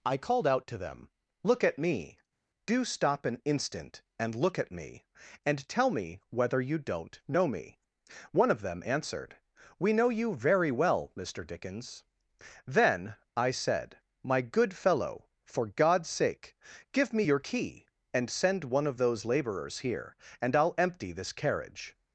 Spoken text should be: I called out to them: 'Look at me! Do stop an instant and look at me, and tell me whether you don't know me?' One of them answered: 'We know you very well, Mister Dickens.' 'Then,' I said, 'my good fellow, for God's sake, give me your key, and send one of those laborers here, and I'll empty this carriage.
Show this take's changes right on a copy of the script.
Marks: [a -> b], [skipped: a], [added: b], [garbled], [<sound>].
I called out to them: 'Look at me! Do stop an instant and look at me, and tell me whether you don't know me?' One of them answered: 'We know you very well, Mister Dickens.' 'Then,' I said, 'my good fellow, for God's sake, give me your key, and send one of those laborers here, and I'll empty this carriage.